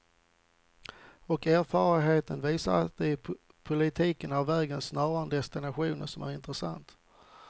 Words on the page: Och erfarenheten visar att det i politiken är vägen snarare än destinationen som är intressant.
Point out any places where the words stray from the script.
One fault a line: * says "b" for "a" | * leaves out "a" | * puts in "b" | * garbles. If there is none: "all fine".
all fine